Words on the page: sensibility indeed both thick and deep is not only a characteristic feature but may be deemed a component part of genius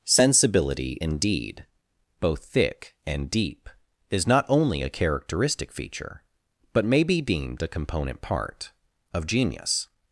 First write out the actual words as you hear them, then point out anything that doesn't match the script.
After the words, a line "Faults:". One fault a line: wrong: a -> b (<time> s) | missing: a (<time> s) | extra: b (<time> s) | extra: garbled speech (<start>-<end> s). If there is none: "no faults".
sensibility indeed both thick and deep is not only a characteristic feature but may be deemed a component part of genius
Faults:
no faults